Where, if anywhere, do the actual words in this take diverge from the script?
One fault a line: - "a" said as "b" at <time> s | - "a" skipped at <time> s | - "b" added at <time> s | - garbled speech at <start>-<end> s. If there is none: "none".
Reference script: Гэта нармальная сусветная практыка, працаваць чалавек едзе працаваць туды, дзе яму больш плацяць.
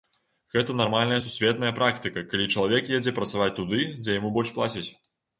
- "працаваць" said as "калі" at 2.3 s